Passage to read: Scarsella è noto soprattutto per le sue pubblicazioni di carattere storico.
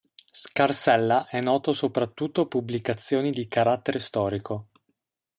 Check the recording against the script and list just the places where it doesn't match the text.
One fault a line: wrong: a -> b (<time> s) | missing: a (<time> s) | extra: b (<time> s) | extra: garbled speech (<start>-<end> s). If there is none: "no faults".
missing: per le sue (2.5 s)